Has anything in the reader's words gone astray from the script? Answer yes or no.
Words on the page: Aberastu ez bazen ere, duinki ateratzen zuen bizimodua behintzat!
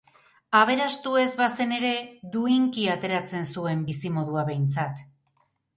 no